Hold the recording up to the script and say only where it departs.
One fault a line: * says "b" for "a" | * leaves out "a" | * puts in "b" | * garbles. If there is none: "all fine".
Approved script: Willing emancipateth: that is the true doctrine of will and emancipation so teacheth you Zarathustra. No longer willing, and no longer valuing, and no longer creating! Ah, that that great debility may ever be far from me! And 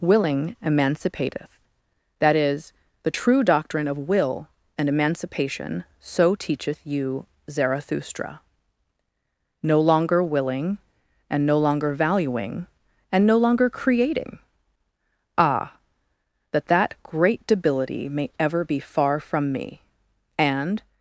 all fine